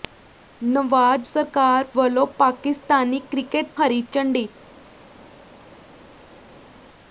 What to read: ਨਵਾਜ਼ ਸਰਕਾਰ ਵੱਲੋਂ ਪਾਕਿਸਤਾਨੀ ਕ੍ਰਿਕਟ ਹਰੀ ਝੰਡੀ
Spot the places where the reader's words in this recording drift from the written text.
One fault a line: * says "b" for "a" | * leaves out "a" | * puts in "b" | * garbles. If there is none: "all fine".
all fine